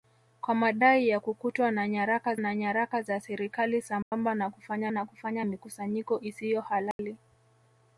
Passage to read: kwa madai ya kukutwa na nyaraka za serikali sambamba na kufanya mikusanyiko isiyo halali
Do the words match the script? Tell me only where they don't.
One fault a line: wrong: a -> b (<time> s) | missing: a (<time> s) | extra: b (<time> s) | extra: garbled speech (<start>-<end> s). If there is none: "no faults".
extra: na nyaraka (2.4 s)
extra: na kufanya (4.9 s)